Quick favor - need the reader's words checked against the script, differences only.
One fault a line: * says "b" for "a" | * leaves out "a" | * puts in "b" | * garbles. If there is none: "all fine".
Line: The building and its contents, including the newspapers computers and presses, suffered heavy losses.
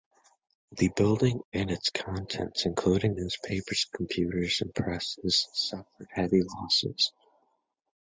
* leaves out "the"